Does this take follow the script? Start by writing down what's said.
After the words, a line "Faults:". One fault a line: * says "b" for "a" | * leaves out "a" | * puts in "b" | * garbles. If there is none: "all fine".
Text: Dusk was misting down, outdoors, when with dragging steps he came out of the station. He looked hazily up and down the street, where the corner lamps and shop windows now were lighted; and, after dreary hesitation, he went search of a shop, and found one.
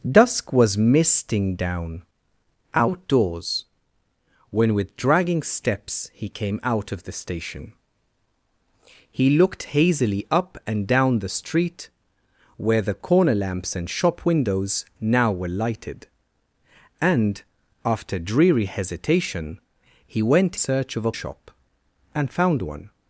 Dusk was misting down, outdoors, when with dragging steps he came out of the station. He looked hazily up and down the street, where the corner lamps and shop windows now were lighted; and, after dreary hesitation, he went search of a shop, and found one.
Faults:
all fine